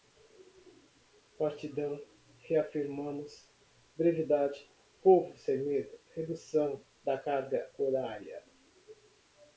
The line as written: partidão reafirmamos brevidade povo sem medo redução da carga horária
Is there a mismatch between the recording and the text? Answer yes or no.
no